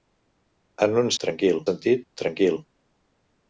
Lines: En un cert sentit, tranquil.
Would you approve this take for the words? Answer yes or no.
no